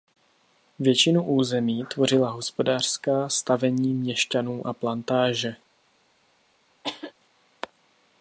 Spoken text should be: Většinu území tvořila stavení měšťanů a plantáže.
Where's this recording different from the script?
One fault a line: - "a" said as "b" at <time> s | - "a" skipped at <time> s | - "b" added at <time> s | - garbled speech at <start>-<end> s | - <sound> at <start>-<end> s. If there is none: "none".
- "hospodářská" added at 2.3 s
- cough at 6.8-7.1 s